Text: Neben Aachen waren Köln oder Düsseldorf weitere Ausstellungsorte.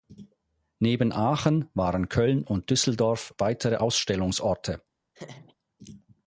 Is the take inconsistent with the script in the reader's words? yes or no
yes